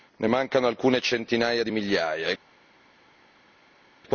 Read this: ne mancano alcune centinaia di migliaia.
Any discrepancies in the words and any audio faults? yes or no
no